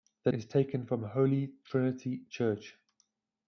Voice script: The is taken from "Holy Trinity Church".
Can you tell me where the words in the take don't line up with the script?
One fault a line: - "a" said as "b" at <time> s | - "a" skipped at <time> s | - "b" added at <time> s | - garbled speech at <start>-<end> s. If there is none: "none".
none